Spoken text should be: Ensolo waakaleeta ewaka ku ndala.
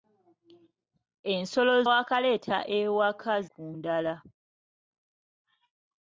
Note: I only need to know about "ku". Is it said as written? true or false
true